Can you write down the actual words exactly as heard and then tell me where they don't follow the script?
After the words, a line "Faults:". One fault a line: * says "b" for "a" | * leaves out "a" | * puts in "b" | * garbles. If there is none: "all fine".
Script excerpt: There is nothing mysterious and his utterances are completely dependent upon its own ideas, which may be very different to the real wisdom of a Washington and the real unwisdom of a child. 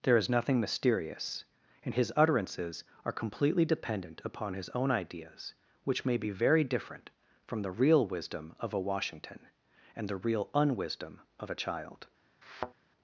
There is nothing mysterious and his utterances are completely dependent upon his own ideas, which may be very different from the real wisdom of a Washington and the real unwisdom of a child.
Faults:
* says "his" for "its"
* says "from" for "to"